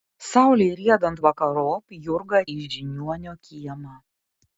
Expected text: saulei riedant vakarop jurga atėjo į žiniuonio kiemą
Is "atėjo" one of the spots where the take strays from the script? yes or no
yes